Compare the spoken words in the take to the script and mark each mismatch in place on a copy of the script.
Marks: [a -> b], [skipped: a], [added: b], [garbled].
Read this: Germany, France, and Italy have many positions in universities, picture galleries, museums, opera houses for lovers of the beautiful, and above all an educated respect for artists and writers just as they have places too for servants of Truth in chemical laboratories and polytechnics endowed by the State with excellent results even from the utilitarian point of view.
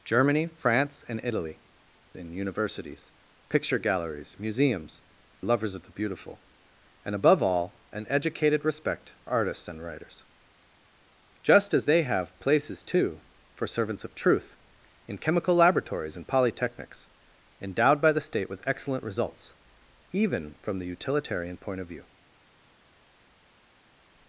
Germany, France, and Italy [skipped: have many positions] in universities, picture galleries, museums, [skipped: opera houses for] lovers of the beautiful, and above all an educated respect [skipped: for] artists and writers just as they have places too for servants of Truth in chemical laboratories and polytechnics endowed by the State with excellent results even from the utilitarian point of view.